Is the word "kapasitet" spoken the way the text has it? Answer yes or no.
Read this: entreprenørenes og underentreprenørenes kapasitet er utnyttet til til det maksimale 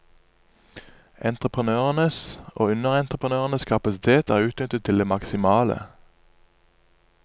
yes